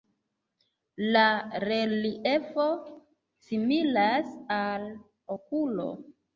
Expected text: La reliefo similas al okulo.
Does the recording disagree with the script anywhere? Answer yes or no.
no